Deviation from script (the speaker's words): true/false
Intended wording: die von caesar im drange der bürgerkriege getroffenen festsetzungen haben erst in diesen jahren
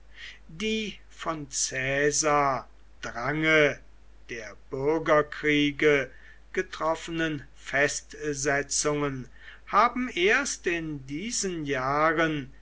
true